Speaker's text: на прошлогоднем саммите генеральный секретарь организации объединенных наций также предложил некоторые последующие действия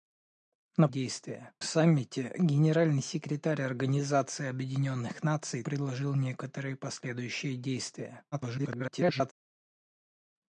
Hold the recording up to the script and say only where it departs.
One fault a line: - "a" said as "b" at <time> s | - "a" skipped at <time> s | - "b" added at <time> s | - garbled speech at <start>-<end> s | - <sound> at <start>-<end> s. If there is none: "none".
- "прошлогоднем" said as "действия" at 0.9 s
- "также" skipped at 5.6 s
- garbled speech at 8.3-9.3 s